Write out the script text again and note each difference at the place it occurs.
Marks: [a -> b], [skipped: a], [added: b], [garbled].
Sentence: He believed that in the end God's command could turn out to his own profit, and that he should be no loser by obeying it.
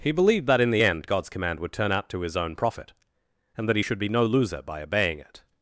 He believed that in the end God's command [could -> would] turn out to his own profit, and that he should be no loser by obeying it.